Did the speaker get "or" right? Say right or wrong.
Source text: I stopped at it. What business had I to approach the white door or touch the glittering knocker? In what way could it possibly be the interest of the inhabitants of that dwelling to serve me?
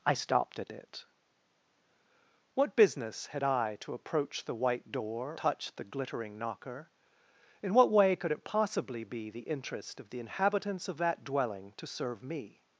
wrong